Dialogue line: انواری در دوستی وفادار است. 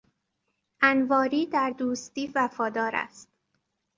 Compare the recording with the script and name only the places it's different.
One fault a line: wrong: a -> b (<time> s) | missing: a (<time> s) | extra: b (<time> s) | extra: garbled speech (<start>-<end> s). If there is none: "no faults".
no faults